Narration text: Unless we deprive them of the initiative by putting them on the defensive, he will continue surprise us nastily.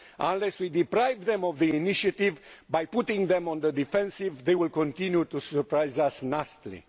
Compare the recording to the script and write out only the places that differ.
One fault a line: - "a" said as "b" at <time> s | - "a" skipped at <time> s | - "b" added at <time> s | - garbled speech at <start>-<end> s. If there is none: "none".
- "he" said as "they" at 4.4 s
- "to" added at 5.3 s